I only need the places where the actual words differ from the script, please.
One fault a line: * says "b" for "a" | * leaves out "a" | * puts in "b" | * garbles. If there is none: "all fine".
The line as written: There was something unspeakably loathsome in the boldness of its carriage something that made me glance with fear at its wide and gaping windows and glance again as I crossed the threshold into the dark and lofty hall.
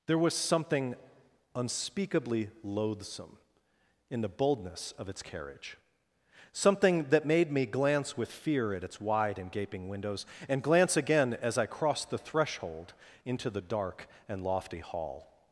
all fine